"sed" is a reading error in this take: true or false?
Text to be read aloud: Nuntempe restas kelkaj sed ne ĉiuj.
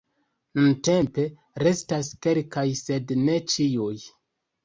false